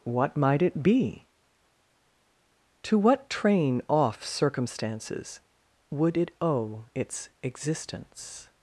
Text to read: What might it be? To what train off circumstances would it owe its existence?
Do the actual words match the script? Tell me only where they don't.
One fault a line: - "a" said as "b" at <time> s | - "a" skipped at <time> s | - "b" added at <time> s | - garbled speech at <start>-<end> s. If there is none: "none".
none